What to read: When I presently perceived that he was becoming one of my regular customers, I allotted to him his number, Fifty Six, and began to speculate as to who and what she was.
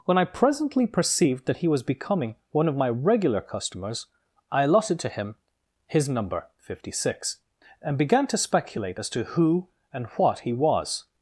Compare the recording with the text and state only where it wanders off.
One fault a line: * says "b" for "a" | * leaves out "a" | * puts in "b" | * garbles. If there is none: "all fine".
* says "he" for "she"